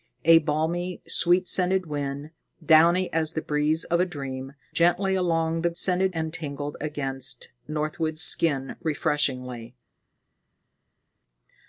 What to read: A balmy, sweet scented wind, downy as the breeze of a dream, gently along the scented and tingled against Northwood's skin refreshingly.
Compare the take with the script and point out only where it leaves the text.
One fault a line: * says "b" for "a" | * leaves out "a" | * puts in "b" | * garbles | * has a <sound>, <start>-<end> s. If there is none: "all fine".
all fine